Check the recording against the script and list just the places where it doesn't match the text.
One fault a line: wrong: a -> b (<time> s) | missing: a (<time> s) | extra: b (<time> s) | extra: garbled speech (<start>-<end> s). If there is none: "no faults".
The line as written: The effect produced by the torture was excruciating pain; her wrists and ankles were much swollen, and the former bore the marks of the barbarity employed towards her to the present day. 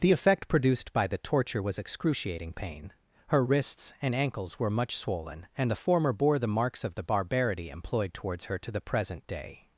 no faults